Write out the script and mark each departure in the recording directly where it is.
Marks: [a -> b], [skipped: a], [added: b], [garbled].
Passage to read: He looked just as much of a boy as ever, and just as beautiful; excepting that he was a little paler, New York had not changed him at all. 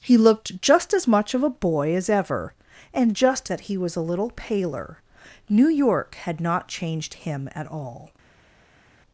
He looked just as much of a boy as ever, and just [skipped: as beautiful; excepting] that he was a little paler, New York had not changed him at all.